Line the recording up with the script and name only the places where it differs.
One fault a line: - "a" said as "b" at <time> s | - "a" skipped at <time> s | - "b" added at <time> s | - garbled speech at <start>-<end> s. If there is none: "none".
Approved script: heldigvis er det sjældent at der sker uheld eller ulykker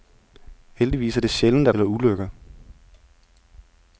- "der sker uheld" skipped at 1.7 s